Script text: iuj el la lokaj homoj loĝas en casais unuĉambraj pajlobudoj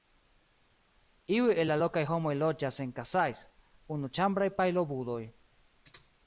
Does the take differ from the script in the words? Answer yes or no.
no